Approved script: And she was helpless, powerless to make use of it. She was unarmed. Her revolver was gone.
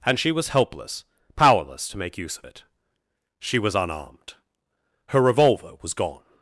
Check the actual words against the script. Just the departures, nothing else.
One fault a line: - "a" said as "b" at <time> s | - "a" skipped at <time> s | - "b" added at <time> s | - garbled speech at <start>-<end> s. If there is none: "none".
none